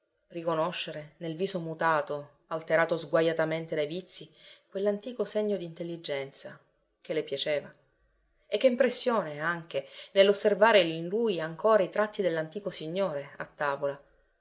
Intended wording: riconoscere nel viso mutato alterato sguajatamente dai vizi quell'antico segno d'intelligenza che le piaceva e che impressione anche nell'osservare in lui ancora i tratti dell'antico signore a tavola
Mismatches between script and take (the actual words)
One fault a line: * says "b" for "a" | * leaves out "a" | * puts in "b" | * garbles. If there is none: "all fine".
all fine